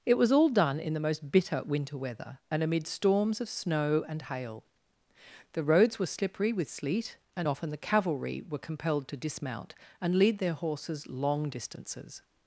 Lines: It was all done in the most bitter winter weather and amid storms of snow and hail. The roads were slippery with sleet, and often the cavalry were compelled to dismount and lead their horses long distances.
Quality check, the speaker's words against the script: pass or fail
pass